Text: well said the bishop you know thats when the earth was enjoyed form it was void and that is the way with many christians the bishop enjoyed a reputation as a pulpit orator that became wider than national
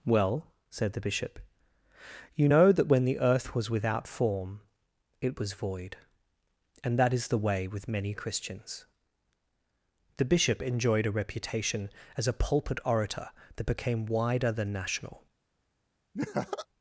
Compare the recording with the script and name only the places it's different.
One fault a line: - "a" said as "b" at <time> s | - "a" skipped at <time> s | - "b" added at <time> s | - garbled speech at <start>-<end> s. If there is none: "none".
- "thats" said as "that" at 2.7 s
- "enjoyed" said as "without" at 3.7 s